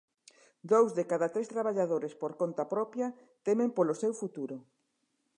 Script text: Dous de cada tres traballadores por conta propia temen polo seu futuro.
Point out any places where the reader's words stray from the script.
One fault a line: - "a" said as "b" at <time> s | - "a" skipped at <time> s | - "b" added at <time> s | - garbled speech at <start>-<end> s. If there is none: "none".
none